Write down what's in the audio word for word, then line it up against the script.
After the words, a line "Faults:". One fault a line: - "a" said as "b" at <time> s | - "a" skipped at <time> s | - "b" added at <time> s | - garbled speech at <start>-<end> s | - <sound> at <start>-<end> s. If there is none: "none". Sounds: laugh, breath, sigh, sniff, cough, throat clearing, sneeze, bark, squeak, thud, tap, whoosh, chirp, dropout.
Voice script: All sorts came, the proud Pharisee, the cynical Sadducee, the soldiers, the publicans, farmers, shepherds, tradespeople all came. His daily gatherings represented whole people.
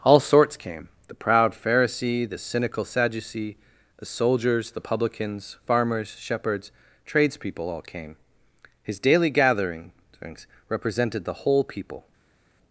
All sorts came, the proud Pharisee, the cynical Sadducee, the soldiers, the publicans, farmers, shepherds, tradespeople all came. His daily gatherings represented the whole people.
Faults:
- "the" added at 11.2 s